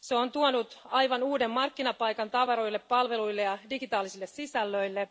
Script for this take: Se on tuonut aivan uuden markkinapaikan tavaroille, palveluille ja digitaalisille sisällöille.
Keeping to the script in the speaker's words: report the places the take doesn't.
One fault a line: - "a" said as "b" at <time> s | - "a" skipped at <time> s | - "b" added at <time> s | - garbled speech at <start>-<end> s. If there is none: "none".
none